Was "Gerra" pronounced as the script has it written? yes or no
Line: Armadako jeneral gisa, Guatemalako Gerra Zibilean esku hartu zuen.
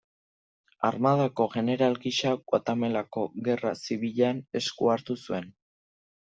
yes